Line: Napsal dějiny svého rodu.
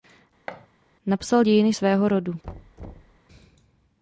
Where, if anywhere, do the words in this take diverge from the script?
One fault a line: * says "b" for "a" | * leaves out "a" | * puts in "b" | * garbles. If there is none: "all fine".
all fine